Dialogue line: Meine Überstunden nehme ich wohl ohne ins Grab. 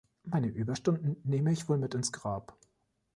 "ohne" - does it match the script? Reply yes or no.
no